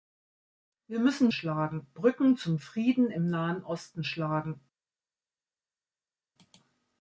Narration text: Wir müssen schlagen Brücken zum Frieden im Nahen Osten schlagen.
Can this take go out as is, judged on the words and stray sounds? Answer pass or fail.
pass